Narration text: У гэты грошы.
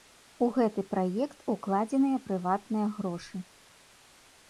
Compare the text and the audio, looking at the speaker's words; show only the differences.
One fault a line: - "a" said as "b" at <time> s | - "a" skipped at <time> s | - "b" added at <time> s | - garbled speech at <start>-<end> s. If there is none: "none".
- "праект укладзеныя прыватныя" added at 0.9 s